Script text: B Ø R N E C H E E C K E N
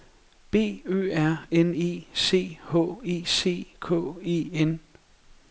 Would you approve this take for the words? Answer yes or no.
no